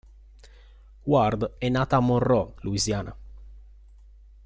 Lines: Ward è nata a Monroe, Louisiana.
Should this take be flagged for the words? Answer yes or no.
no